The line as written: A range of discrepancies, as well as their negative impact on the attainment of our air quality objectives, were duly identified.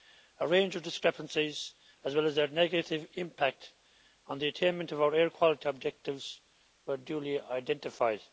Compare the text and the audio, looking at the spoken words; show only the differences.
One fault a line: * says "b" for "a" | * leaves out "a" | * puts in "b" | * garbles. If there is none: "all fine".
all fine